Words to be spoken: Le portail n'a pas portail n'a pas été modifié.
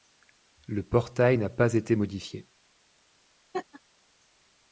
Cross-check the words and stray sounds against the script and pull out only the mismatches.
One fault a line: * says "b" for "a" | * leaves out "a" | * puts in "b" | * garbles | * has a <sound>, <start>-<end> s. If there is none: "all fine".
* leaves out "portail n'a pas"
* has a laugh, 3.5-3.8 s